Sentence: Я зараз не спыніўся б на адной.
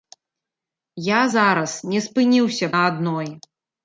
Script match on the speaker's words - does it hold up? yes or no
no